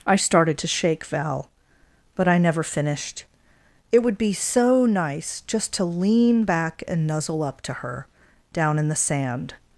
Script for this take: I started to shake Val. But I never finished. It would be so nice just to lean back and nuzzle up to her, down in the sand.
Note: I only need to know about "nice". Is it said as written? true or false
true